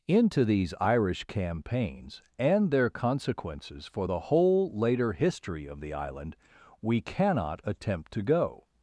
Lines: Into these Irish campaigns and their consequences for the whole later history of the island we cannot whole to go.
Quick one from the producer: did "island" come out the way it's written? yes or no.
yes